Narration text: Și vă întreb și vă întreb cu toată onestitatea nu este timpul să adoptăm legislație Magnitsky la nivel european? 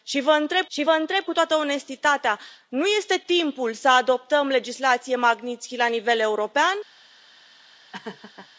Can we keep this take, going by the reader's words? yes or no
yes